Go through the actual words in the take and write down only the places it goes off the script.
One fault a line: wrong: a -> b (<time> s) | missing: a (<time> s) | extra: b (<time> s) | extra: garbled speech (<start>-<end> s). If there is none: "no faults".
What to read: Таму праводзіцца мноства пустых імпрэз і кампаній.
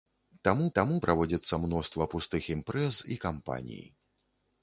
extra: таму (0.8 s)